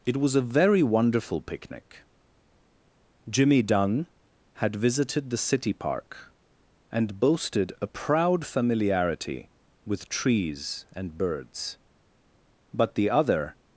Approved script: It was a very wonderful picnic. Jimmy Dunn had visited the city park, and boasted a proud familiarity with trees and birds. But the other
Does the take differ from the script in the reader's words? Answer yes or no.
no